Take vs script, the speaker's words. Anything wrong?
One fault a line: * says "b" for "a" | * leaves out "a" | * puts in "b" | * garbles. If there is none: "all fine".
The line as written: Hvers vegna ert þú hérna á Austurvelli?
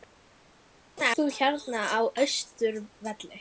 * leaves out "ert"